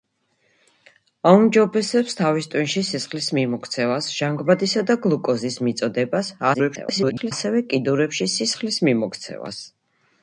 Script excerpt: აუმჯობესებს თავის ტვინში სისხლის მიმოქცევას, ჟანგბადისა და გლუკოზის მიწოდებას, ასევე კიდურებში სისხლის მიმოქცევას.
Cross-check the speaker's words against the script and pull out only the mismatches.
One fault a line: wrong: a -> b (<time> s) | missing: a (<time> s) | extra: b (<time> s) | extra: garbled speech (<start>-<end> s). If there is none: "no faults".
extra: garbled speech (6.5-7.3 s)